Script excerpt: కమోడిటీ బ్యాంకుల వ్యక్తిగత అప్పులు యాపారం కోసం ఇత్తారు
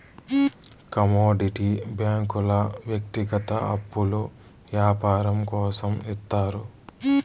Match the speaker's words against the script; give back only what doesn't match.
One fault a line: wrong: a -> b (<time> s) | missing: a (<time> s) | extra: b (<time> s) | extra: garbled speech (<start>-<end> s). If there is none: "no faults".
no faults